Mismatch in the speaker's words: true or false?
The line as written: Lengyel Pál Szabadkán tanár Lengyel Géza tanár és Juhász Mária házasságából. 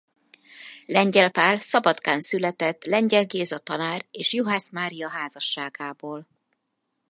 true